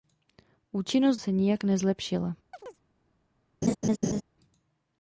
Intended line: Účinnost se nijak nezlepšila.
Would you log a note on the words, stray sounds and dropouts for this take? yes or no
yes